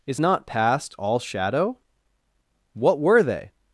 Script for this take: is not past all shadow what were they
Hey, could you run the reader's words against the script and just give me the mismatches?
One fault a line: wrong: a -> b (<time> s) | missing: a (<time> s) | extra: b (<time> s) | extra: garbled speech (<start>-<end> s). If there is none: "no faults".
no faults